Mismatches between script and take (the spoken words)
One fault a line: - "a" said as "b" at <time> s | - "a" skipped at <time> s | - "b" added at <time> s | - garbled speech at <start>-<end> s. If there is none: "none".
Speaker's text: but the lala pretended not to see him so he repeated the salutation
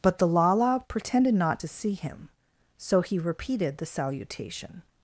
none